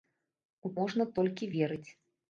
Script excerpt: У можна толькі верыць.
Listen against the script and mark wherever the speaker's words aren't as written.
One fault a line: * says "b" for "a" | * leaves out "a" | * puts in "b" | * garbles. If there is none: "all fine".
all fine